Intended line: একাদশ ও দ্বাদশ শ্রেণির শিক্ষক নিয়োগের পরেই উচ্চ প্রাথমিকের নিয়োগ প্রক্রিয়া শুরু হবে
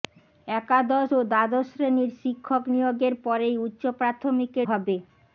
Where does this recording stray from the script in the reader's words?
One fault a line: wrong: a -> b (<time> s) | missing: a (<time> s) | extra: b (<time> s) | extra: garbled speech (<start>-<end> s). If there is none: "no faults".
missing: নিয়োগ প্রক্রিয়া শুরু (4.7 s)